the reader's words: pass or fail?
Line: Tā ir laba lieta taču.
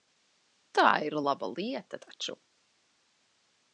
pass